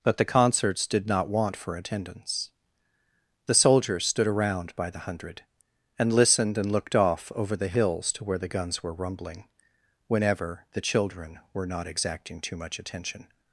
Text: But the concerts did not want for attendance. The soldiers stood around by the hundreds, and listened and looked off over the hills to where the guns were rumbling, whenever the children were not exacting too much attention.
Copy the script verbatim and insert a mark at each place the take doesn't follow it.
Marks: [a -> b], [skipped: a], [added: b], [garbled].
But the concerts did not want for attendance. The soldiers stood around by the [hundreds, -> hundred] and listened and looked off over the hills to where the guns were rumbling, whenever the children were not exacting too much attention.